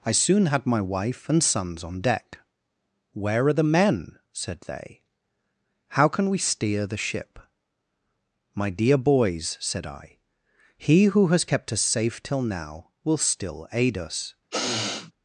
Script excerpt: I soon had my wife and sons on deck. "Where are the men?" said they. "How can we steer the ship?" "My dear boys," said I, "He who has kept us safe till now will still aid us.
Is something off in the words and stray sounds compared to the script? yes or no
yes